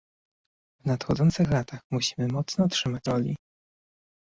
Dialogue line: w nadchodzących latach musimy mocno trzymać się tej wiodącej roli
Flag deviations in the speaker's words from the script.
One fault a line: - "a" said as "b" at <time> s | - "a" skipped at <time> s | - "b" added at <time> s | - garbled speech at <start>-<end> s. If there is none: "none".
- "się tej wiodącej" skipped at 3.1 s